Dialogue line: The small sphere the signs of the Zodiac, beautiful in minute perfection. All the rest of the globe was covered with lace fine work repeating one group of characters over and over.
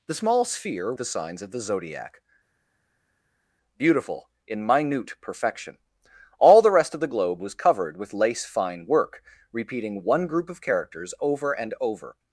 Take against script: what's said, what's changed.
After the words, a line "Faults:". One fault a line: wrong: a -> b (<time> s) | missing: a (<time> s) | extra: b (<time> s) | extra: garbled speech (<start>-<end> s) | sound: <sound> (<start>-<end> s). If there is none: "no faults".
The small sphere the signs of the Zodiac, beautiful in minute perfection. All the rest of the globe was covered with lace fine work repeating one group of characters over and over.
Faults:
no faults